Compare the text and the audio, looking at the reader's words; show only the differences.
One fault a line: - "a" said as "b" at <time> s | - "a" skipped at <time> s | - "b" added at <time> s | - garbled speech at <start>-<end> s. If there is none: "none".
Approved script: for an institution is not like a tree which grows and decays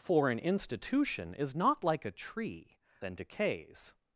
- "which grows" skipped at 2.8 s